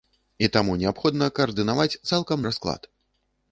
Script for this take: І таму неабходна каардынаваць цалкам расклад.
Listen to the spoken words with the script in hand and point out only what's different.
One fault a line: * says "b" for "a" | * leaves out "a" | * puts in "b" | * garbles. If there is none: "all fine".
all fine